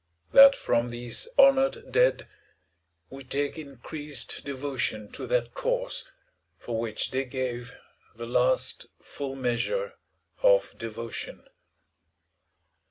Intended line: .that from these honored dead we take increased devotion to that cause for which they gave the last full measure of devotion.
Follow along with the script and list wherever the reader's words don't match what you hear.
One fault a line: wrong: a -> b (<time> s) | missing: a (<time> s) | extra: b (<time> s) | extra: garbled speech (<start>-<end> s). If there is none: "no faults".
no faults